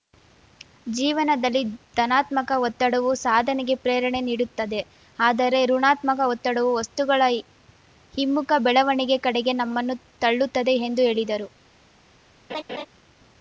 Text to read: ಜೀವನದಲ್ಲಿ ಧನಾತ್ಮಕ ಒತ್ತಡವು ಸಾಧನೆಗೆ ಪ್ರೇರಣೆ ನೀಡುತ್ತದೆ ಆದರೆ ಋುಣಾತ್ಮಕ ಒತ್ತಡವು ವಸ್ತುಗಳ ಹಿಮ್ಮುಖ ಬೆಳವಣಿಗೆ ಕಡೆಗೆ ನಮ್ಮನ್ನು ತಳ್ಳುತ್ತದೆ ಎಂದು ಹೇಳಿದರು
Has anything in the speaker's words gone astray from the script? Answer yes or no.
no